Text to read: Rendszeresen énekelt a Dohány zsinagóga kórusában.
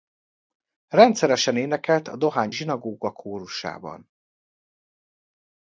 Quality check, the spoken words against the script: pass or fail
pass